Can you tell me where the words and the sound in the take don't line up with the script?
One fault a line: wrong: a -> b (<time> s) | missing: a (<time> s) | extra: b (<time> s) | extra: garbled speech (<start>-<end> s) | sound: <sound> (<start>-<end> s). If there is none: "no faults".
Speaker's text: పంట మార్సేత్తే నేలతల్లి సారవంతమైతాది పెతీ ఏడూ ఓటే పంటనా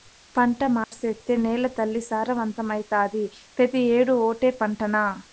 sound: dropout (0.8-0.9 s)